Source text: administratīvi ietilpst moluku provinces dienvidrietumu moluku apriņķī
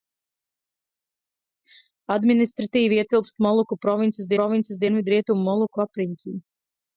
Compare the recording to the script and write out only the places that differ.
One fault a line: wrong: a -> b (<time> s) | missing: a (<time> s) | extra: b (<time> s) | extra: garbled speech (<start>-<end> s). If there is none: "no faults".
extra: provinces (4.4 s)